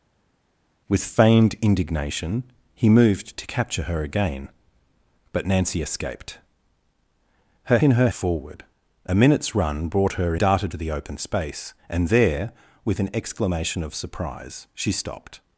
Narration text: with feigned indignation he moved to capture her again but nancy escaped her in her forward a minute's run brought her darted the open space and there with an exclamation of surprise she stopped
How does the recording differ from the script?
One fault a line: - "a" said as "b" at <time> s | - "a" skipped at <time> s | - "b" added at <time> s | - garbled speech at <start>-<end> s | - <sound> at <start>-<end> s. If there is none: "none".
none